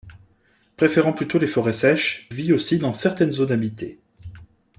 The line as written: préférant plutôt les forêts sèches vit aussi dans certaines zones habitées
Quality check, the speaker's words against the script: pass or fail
pass